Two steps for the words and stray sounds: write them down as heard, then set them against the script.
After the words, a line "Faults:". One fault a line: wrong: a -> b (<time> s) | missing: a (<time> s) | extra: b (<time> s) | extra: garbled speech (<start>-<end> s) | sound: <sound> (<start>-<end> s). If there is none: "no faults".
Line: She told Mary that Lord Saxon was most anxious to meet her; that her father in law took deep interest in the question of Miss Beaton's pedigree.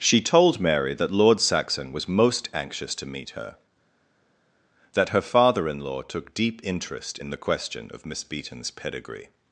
She told Mary that Lord Saxon was most anxious to meet her; that her father in law took deep interest in the question of Miss Beaton's pedigree.
Faults:
no faults